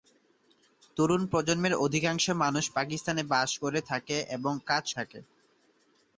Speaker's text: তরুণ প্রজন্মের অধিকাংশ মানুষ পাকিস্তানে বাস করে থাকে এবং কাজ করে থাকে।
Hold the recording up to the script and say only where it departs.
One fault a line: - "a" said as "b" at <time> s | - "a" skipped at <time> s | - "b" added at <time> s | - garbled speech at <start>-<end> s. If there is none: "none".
- "করে" skipped at 4.8 s